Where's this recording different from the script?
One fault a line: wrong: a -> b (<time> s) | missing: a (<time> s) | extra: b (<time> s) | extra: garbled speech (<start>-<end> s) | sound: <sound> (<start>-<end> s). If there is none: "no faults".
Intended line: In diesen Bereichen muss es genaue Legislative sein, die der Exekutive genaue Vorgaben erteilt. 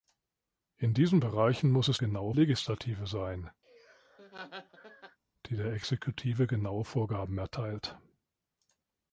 sound: laugh (3.6-5.2 s)